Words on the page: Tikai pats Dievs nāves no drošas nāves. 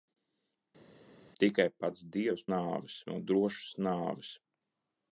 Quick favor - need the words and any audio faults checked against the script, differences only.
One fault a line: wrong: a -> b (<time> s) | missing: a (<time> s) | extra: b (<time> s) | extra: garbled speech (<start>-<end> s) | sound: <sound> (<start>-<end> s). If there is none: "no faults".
no faults